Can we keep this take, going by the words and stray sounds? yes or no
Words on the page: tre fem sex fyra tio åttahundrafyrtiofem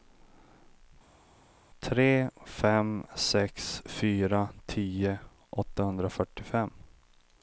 yes